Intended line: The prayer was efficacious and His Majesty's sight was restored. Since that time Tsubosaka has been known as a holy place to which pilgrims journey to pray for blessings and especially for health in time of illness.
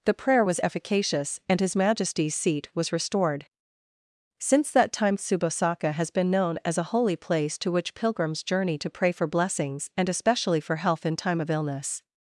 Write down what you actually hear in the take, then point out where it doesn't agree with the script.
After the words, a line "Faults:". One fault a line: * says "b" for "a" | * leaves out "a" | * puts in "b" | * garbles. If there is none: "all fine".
The prayer was efficacious and His Majesty's seat was restored. Since that time Tsubosaka has been known as a holy place to which pilgrims journey to pray for blessings and especially for health in time of illness.
Faults:
* says "seat" for "sight"